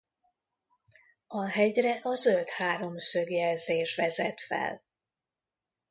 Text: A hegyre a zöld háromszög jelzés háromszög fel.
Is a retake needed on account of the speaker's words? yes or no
yes